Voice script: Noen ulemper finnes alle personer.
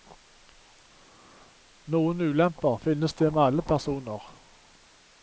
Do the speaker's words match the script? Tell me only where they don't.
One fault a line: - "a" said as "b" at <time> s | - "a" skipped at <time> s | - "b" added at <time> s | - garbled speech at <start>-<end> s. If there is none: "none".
- "det med" added at 3.1 s